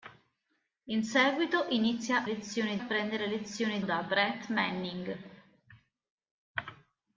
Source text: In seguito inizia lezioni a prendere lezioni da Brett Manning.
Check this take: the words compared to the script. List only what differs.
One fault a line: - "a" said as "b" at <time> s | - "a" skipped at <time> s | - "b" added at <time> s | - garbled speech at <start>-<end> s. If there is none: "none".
none